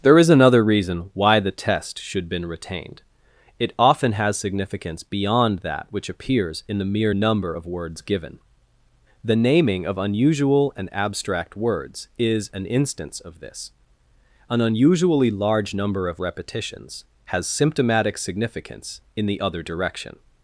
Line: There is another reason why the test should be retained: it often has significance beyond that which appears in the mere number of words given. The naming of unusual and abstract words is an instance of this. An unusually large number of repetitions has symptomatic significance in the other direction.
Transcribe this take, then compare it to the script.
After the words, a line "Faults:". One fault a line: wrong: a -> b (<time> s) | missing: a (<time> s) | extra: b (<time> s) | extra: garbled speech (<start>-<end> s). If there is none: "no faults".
There is another reason why the test should been retained: it often has significance beyond that which appears in the mere number of words given. The naming of unusual and abstract words is an instance of this. An unusually large number of repetitions has symptomatic significance in the other direction.
Faults:
wrong: be -> been (2.3 s)